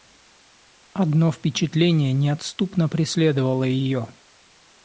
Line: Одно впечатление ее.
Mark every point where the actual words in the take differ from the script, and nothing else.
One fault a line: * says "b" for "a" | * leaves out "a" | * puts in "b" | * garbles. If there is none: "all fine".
* puts in "неотступно преследовало"